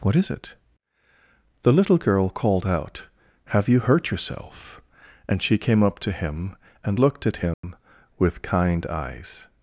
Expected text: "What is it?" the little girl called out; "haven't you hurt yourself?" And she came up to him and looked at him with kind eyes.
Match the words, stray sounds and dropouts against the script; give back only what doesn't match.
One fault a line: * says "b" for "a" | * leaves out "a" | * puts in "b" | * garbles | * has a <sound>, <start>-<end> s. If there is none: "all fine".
* says "have" for "haven't"
* has a dropout, 7.5-7.6 s